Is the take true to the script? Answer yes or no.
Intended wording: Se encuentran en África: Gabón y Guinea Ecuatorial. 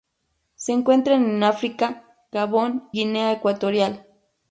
no